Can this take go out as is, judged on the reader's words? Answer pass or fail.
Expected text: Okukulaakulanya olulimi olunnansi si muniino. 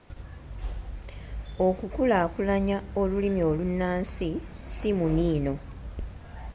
pass